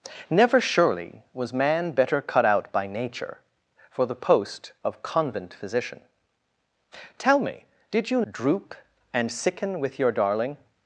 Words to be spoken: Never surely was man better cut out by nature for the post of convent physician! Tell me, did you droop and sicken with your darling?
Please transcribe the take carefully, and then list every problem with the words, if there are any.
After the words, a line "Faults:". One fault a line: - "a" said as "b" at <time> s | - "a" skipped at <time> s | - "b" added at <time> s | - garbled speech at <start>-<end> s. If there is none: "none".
Never surely was man better cut out by nature for the post of convent physician! Tell me, did you droop and sicken with your darling?
Faults:
none